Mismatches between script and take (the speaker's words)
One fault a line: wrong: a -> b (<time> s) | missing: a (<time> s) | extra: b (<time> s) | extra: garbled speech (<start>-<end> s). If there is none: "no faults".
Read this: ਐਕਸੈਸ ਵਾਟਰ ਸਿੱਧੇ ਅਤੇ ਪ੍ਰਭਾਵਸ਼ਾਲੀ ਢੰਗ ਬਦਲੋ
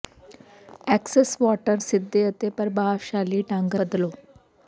no faults